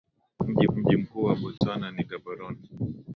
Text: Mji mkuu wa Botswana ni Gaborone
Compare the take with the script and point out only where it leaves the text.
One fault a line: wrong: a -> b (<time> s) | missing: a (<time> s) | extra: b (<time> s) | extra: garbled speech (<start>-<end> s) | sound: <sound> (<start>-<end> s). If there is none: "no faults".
extra: mji (0.8 s)
sound: dropout (1.6-1.6 s)